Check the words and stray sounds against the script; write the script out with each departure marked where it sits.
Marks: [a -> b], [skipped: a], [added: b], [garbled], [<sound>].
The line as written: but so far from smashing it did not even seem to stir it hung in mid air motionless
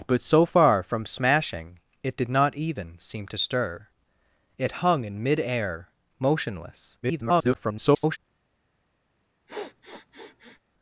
but so far from smashing it did not even seem to stir it hung in mid air motionless [garbled] [sniff]